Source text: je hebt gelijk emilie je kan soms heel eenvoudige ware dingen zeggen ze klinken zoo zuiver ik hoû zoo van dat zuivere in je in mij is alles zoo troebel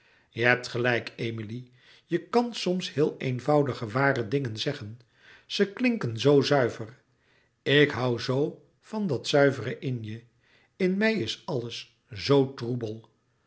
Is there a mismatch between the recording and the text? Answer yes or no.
no